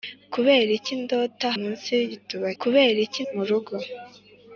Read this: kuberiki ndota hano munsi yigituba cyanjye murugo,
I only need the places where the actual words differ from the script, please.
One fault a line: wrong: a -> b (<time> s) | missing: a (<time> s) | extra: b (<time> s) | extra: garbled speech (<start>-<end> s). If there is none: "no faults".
missing: hano (1.5 s)
wrong: cyanjye -> kuberiki (2.6 s)